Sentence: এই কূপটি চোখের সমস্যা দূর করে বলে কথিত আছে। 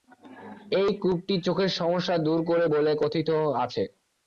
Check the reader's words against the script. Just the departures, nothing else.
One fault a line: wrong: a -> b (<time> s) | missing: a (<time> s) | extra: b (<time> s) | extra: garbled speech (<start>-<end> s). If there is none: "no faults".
no faults